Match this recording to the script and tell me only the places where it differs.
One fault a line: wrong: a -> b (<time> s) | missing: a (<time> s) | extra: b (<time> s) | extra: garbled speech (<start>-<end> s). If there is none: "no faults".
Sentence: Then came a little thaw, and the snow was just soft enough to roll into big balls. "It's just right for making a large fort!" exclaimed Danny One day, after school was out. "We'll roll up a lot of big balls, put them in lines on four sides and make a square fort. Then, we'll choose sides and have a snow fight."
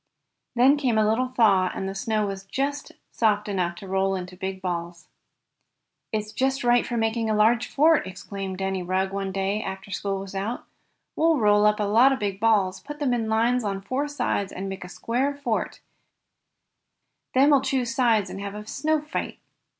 extra: Rugg (8.8 s)